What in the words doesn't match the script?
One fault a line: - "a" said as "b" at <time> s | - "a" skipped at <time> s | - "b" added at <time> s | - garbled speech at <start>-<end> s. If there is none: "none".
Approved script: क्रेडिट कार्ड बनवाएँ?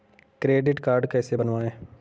- "कैसे" added at 1.1 s